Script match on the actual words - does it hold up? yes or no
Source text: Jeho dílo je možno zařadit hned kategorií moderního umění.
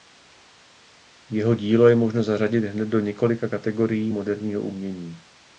no